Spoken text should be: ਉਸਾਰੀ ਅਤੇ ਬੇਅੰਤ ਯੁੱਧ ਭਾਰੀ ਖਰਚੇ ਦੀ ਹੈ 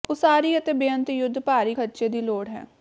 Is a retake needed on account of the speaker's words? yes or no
yes